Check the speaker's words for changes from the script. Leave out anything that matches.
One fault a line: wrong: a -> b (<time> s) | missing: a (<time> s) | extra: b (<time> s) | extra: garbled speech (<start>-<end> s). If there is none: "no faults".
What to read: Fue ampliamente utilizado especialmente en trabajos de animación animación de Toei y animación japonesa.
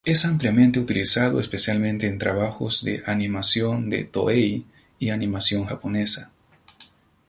wrong: Fue -> Es (0.0 s)
missing: animación (3.9 s)